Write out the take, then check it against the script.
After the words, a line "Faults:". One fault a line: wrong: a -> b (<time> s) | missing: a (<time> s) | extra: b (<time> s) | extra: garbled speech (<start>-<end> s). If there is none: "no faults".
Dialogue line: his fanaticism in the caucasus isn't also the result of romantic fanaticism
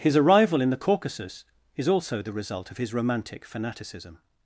his arrival in the caucasus is also the result of his romantic fanaticism
Faults:
wrong: fanaticism -> arrival (0.2 s)
wrong: isn't -> is (1.8 s)
extra: his (2.8 s)